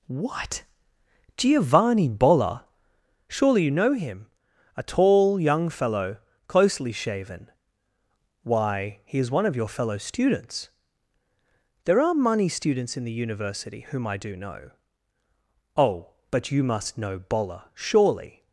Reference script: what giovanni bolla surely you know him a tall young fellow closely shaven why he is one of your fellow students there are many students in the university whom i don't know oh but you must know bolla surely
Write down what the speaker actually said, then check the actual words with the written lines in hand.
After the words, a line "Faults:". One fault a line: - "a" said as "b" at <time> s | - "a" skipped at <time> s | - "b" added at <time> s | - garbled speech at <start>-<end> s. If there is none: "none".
what giovanni bolla surely you know him a tall young fellow closely shaven why he is one of your fellow students there are money students in the university whom i do know oh but you must know bolla surely
Faults:
- "many" said as "money" at 12.1 s
- "don't" said as "do" at 14.2 s